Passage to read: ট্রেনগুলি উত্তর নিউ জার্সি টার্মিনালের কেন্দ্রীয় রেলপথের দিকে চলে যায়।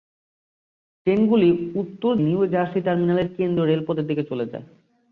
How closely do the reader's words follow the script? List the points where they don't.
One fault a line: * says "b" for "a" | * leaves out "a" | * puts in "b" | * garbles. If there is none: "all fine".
all fine